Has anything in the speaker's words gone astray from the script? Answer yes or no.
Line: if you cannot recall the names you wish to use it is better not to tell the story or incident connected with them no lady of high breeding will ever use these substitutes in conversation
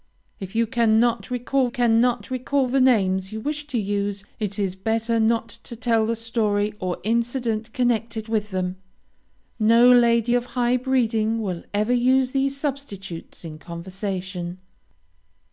yes